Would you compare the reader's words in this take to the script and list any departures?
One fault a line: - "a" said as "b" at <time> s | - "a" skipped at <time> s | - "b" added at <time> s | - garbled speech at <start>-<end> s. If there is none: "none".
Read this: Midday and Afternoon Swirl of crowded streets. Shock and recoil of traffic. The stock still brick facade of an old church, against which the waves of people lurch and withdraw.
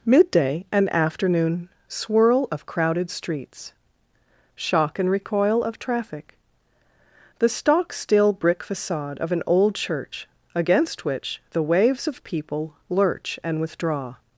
none